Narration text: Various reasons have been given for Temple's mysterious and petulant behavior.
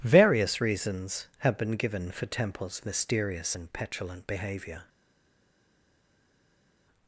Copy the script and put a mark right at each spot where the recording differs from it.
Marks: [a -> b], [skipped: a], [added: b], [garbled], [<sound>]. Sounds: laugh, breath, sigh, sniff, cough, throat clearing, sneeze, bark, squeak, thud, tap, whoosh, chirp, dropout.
Various reasons have been given for Temple's mysterious and petulant behavior.